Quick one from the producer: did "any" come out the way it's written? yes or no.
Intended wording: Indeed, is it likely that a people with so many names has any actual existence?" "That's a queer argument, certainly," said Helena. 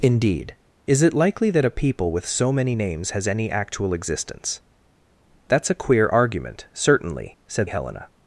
yes